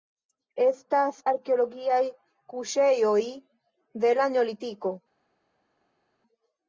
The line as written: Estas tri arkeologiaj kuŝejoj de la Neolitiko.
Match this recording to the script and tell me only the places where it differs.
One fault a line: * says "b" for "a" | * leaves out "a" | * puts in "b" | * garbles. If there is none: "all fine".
* leaves out "tri"